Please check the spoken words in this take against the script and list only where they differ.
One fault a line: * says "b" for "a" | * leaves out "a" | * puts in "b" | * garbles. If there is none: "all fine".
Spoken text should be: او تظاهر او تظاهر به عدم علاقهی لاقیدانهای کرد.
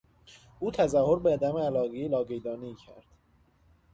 * leaves out "او تظاهر"